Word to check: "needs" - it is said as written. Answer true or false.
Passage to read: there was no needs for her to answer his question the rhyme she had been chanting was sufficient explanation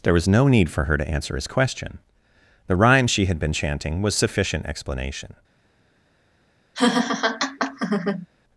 false